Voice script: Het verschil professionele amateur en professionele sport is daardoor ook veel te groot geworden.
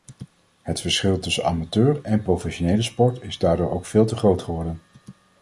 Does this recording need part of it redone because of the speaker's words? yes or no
yes